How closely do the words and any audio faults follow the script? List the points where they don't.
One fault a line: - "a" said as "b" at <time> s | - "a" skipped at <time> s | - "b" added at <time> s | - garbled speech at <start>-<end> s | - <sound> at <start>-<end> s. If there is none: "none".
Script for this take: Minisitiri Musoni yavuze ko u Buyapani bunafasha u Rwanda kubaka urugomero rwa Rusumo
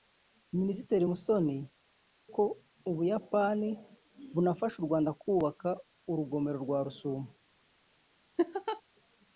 - "yavuze" skipped at 1.6 s
- laugh at 8.4-8.8 s